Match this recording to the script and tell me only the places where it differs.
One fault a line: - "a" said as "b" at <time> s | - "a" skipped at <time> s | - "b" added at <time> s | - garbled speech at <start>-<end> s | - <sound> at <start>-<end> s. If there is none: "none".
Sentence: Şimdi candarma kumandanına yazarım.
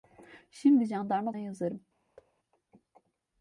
- "kumandanına" skipped at 1.3 s
- thud at 2.2-2.3 s